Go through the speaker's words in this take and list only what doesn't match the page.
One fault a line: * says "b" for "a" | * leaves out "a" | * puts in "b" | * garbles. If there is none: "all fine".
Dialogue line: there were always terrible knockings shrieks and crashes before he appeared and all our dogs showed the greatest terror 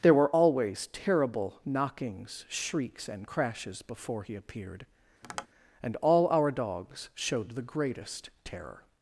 all fine